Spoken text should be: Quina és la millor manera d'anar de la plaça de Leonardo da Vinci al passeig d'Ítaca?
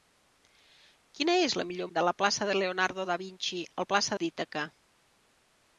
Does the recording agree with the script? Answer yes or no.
no